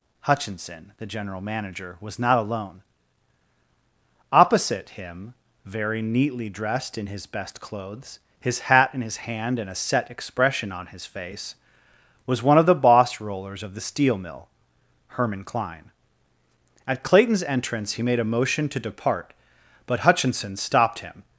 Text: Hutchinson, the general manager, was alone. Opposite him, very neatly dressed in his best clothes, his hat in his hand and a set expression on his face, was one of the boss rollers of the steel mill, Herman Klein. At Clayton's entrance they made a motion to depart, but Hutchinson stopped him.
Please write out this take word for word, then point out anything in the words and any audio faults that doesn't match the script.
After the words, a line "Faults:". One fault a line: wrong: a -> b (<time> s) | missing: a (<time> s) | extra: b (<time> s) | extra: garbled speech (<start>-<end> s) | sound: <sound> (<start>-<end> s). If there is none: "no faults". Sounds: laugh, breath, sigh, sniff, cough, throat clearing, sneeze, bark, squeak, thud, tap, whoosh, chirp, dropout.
Hutchinson, the general manager, was not alone. Opposite him, very neatly dressed in his best clothes, his hat in his hand and a set expression on his face, was one of the boss rollers of the steel mill, Herman Klein. At Clayton's entrance he made a motion to depart, but Hutchinson stopped him.
Faults:
extra: not (2.2 s)
wrong: they -> he (17.9 s)